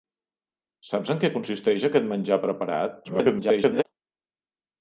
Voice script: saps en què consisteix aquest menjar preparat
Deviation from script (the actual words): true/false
true